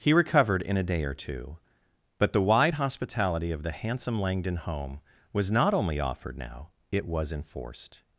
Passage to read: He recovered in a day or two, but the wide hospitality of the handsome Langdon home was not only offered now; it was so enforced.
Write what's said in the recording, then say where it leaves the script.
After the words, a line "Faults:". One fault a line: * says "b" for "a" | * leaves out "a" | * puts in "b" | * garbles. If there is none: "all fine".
He recovered in a day or two, but the wide hospitality of the handsome Langdon home was not only offered now; it was enforced.
Faults:
* leaves out "so"